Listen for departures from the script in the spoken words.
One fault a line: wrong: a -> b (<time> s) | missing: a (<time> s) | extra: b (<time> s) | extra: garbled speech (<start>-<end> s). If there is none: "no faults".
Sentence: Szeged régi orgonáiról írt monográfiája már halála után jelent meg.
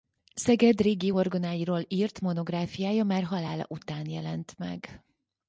no faults